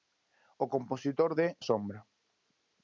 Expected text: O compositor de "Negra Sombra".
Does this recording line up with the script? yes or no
no